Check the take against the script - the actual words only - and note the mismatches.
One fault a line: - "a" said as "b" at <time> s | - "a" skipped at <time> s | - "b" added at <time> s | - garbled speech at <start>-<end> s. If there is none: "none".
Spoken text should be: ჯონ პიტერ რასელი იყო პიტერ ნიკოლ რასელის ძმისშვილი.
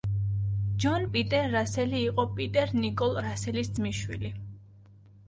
none